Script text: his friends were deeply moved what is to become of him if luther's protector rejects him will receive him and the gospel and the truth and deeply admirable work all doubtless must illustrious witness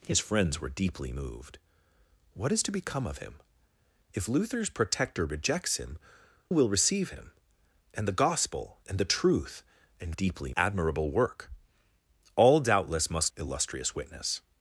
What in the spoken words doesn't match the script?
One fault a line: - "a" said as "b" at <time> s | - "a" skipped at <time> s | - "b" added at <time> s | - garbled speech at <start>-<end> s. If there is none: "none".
none